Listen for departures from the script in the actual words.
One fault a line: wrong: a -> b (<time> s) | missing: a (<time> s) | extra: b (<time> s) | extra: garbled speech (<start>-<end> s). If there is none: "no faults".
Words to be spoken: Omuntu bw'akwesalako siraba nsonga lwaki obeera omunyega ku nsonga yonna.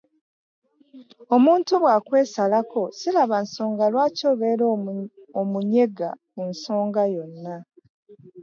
no faults